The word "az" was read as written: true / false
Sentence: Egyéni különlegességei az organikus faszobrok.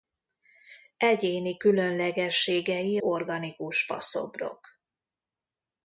false